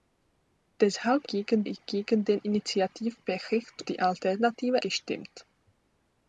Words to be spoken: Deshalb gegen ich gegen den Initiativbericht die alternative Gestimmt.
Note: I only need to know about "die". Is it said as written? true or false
true